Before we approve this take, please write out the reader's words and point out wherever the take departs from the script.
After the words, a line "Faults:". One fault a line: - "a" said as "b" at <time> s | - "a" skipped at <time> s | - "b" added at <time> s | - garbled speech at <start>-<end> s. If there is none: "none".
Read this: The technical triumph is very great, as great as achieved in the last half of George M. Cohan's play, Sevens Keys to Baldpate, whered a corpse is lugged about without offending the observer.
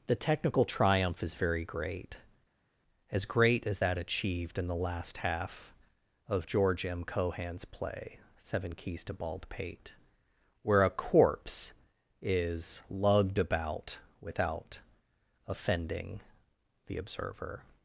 The technical triumph is very great, as great as that achieved in the last half of George M. Cohan's play, Seven Keys to Baldpate, where a corpse is lugged about without offending the observer.
Faults:
- "that" added at 3.8 s
- "Sevens" said as "Seven" at 8.4 s
- "whered" said as "where" at 10.6 s